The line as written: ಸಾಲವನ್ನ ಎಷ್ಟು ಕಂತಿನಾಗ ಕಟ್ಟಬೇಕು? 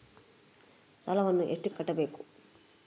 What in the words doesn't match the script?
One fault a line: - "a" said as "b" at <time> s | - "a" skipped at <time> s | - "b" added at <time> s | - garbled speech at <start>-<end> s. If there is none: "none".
- "ಕಂತಿನಾಗ" skipped at 1.7 s